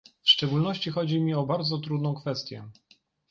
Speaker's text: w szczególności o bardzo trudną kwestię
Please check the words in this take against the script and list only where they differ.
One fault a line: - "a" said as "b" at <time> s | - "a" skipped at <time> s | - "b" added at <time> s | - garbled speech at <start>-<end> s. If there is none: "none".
- "chodzi mi" added at 0.9 s